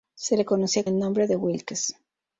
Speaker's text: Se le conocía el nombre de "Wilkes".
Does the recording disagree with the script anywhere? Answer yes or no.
no